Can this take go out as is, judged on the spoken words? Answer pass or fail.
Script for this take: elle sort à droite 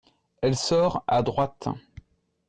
pass